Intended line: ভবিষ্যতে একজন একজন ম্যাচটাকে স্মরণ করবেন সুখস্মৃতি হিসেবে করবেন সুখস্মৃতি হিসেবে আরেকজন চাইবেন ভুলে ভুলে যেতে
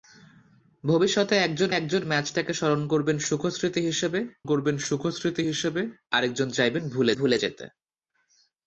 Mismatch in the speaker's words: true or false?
false